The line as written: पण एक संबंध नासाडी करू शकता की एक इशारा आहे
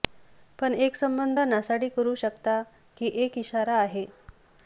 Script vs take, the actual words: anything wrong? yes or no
no